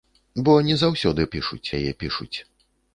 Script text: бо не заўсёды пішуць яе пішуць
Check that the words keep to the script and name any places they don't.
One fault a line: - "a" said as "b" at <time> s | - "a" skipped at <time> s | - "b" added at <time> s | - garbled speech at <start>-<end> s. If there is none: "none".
none